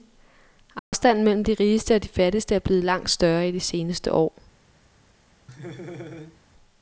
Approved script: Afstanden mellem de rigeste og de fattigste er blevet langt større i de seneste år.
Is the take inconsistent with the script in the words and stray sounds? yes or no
yes